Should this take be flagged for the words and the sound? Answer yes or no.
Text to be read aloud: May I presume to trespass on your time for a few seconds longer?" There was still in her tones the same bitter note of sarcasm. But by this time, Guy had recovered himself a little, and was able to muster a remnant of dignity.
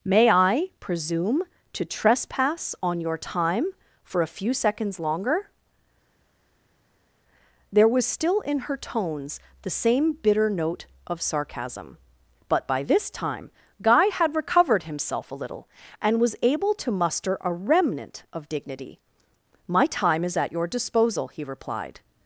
yes